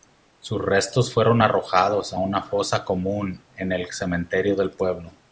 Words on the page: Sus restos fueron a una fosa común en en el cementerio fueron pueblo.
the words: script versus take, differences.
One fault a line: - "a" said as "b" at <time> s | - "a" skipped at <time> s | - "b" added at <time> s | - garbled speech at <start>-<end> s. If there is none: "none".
- "arrojados" added at 1.4 s
- "en" skipped at 3.7 s
- "fueron" said as "del" at 4.5 s